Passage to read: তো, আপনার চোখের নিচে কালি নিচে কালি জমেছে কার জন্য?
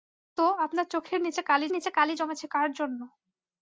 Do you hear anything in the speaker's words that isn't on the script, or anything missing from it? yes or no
no